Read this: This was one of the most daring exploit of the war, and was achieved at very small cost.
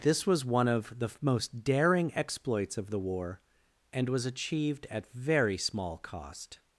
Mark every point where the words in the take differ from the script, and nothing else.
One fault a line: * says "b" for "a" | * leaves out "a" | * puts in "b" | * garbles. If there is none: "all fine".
* says "exploits" for "exploit"